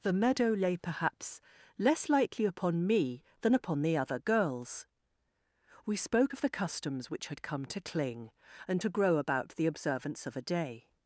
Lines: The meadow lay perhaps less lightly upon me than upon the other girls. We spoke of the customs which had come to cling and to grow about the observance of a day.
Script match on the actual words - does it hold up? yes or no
yes